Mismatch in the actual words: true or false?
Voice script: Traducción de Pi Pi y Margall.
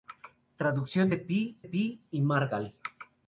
false